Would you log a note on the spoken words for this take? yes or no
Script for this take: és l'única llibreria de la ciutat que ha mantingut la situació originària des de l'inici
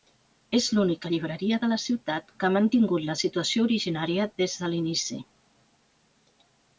no